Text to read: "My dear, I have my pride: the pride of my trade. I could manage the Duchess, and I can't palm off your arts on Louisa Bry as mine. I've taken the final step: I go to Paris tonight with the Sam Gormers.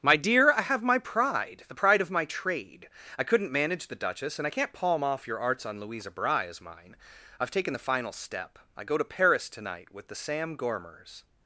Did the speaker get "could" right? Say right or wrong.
wrong